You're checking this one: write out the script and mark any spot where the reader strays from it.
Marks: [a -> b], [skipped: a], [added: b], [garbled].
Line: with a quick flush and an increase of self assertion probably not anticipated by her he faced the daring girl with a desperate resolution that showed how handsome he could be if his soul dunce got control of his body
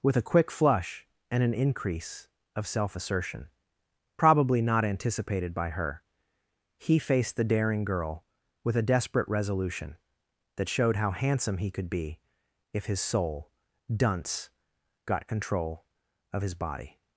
with a quick flush and an increase of self assertion probably not anticipated by her he faced the daring girl with a desperate resolution that showed how handsome he could be if his soul dunce got control of his body